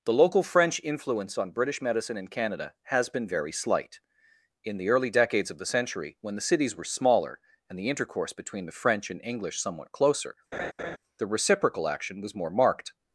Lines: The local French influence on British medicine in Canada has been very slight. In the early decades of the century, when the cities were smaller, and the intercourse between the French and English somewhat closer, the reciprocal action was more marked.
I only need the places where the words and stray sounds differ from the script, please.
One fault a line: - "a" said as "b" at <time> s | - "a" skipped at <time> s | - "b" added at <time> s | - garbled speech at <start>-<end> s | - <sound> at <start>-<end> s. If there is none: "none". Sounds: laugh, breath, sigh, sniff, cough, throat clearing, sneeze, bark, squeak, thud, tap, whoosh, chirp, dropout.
- laugh at 10.5-11.0 s